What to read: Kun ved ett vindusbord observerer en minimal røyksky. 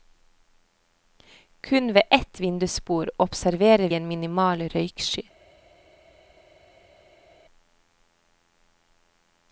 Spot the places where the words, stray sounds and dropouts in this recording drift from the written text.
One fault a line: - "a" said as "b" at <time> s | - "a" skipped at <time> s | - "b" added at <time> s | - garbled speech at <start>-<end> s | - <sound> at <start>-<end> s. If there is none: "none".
none